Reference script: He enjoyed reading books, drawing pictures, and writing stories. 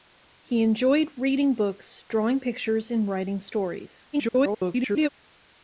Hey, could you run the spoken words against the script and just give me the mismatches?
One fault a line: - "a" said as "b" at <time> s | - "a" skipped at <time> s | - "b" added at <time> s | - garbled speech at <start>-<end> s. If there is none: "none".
- garbled speech at 4.1-5.1 s